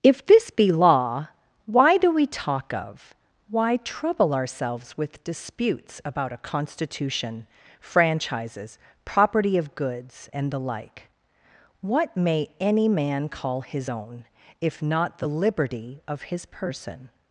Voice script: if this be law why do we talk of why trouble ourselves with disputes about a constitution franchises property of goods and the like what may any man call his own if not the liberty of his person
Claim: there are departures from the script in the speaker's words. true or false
false